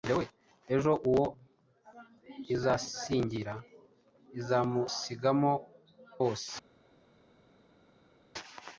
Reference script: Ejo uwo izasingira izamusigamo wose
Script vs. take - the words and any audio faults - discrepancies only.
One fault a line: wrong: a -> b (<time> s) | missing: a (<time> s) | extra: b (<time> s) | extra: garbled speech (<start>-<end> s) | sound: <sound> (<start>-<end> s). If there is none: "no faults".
no faults